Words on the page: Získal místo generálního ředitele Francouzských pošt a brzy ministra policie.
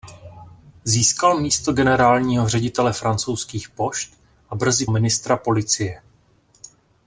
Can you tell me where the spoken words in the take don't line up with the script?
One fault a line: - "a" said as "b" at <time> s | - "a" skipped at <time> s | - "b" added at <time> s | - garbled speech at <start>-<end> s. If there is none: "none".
none